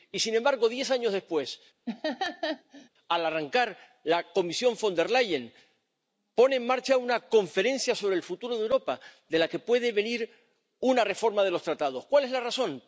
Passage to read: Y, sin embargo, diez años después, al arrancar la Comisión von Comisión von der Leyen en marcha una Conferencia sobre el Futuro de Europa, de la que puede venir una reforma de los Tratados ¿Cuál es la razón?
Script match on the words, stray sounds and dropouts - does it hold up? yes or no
no